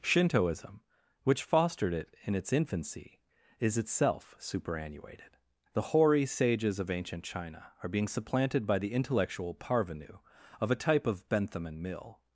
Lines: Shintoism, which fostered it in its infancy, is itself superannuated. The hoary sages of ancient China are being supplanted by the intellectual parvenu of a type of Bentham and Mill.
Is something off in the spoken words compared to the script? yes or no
no